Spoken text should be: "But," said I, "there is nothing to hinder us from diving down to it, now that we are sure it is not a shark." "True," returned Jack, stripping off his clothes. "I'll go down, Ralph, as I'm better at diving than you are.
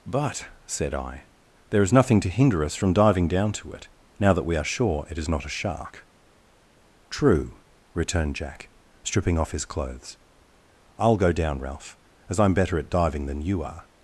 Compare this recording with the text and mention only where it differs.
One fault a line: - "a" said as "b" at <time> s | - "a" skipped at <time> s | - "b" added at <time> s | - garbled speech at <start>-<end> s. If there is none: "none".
none